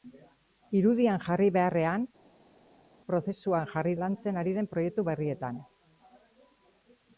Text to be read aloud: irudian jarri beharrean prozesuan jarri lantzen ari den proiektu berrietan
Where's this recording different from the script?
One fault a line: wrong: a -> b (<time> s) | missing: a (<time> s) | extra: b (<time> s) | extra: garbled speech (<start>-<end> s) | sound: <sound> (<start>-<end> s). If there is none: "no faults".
no faults